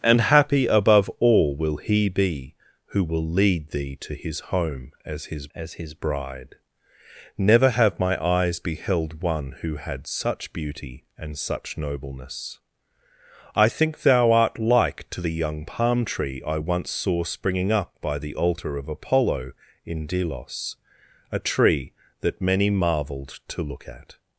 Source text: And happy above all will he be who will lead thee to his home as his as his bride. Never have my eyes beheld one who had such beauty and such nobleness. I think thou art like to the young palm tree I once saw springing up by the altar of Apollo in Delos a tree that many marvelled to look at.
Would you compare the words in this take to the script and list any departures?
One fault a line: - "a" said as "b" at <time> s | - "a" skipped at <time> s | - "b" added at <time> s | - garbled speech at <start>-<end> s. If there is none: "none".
none